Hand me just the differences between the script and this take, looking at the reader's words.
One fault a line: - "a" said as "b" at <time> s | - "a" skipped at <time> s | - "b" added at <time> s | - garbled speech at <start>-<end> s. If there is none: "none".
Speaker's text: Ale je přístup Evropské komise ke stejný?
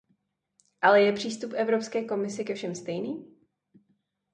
- "všem" added at 2.5 s